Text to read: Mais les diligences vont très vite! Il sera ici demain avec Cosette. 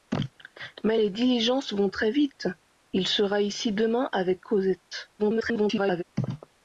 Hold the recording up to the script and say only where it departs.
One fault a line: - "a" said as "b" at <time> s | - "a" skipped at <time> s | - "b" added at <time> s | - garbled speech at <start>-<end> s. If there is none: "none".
- garbled speech at 5.2-6.0 s